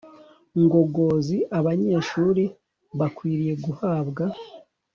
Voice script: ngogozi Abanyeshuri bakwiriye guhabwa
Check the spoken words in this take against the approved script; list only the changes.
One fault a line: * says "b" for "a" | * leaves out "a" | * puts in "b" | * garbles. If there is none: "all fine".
all fine